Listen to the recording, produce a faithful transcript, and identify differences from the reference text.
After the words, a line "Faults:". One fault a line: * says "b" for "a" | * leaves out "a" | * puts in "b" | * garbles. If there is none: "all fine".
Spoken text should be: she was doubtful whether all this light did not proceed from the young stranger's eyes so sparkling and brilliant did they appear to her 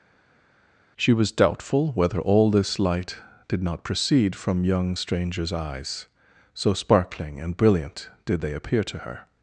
she was doubtful whether all this light did not proceed from young stranger's eyes so sparkling and brilliant did they appear to her
Faults:
* leaves out "the"